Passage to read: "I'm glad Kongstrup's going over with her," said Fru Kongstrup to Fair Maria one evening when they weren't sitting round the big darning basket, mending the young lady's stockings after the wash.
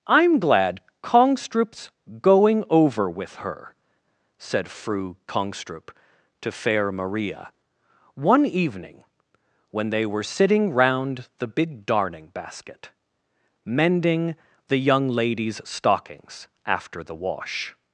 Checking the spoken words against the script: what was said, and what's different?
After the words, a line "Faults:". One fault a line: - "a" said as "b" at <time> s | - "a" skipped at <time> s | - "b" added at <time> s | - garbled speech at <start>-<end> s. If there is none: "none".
"I'm glad Kongstrup's going over with her," said Fru Kongstrup to Fair Maria one evening when they were sitting round the big darning basket, mending the young lady's stockings after the wash.
Faults:
- "weren't" said as "were" at 10.1 s